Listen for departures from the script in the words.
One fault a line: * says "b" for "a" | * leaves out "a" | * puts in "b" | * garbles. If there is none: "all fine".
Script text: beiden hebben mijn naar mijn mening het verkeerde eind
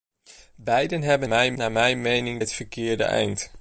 all fine